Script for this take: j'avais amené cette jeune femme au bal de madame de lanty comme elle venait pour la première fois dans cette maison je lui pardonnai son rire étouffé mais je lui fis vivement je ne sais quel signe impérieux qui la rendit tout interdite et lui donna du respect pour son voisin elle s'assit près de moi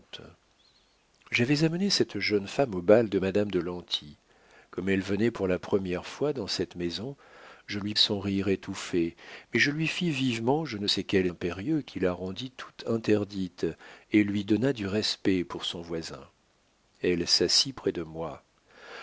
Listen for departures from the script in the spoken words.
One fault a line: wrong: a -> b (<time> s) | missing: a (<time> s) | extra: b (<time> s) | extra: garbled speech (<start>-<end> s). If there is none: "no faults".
missing: pardonnai (7.9 s)
missing: signe (11.3 s)